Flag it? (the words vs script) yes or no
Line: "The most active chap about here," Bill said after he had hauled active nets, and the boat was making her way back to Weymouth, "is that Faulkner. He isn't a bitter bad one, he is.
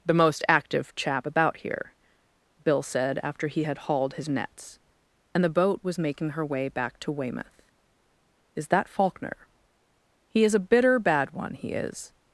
yes